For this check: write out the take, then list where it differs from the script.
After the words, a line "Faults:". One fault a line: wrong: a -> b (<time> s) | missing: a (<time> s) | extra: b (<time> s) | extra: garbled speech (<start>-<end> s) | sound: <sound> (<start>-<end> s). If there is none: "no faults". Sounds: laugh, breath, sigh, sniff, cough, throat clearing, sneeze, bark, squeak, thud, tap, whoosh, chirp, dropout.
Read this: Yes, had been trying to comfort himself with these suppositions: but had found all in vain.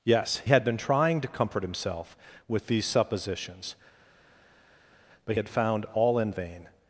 Yes, had been trying to comfort himself with these suppositions: but had found all in vain.
Faults:
no faults